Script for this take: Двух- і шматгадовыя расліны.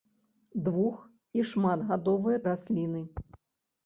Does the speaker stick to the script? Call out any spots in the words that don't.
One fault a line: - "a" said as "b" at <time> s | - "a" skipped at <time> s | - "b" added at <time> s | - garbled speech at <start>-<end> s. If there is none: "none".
none